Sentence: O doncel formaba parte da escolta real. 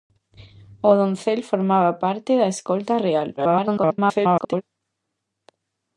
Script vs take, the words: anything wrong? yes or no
yes